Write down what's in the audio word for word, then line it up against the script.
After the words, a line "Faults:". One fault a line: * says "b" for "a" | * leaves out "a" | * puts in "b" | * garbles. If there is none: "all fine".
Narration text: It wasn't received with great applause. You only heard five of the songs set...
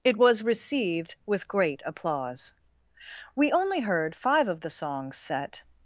It was received with great applause. We only heard five of the songs set...
Faults:
* says "was" for "wasn't"
* says "We" for "You"